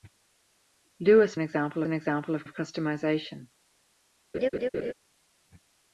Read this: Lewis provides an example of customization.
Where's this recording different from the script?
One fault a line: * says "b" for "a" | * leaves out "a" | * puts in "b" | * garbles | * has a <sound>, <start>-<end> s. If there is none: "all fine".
* says "example" for "provides"
* puts in "of"
* has a laugh, 4.3-4.9 s